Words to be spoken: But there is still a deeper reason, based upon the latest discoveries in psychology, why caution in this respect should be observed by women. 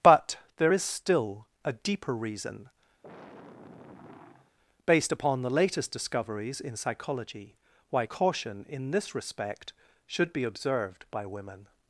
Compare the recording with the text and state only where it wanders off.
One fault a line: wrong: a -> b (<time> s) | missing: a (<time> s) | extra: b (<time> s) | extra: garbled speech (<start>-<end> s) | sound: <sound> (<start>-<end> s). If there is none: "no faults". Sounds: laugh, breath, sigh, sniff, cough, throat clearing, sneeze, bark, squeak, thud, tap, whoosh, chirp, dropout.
sound: sigh (3.0-4.6 s)